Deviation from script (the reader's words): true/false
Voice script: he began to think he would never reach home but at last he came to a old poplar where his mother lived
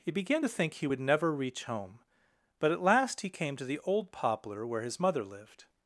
true